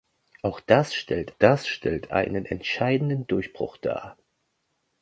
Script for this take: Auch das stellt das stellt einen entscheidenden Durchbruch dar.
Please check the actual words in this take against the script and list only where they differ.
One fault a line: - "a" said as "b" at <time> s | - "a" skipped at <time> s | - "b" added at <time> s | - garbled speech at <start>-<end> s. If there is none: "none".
none